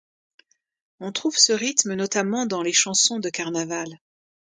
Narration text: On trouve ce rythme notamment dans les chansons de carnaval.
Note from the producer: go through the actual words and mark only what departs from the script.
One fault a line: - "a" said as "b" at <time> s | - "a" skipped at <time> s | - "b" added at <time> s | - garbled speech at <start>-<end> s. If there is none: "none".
none